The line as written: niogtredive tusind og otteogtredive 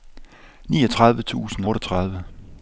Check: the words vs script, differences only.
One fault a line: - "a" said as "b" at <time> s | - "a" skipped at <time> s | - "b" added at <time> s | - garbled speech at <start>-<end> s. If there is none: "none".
- "og" skipped at 1.6 s